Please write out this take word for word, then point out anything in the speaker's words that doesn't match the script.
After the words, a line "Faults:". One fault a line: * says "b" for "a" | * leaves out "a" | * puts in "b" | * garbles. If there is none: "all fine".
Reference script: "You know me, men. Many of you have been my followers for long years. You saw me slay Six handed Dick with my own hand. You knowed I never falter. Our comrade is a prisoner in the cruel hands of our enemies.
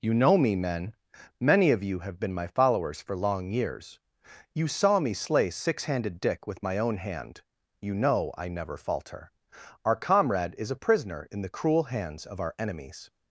"You know me, men. Many of you have been my followers for long years. You saw me slay Six handed Dick with my own hand. You know I never falter. Our comrade is a prisoner in the cruel hands of our enemies.
Faults:
* says "know" for "knowed"